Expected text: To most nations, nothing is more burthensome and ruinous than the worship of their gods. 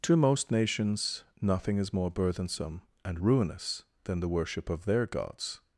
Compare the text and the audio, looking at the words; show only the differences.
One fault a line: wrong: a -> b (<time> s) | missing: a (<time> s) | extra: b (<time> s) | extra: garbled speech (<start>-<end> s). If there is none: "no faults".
no faults